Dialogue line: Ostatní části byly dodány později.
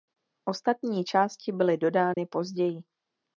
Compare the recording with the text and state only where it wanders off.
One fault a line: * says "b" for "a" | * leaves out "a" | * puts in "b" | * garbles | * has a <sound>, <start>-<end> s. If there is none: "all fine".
* has a dropout, 2.1-2.2 s